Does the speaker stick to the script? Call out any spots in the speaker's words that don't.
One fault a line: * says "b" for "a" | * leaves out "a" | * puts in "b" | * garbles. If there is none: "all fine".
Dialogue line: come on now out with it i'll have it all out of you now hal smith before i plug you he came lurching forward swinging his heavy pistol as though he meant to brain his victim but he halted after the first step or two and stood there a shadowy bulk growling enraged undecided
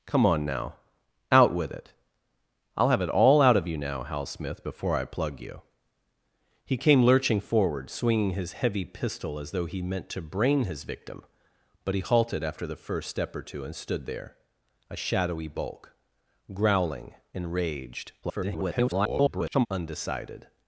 * garbles